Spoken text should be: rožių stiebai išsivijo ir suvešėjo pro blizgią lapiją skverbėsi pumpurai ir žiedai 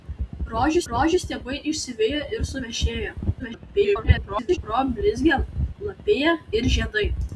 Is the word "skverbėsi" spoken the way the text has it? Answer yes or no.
no